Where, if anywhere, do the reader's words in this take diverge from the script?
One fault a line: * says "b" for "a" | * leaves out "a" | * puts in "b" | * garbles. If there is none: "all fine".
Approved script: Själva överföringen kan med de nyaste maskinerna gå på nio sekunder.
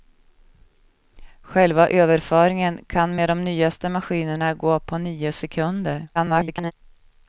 * garbles